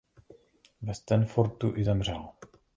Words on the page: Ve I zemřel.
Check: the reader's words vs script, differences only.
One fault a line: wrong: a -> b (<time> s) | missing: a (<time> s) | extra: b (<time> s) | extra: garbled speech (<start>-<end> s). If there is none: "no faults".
extra: Stanfordu (0.9 s)